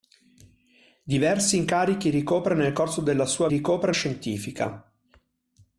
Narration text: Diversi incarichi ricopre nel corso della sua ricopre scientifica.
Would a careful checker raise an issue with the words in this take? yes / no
no